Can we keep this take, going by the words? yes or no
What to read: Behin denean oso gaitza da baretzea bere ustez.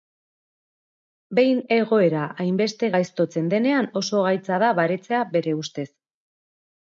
no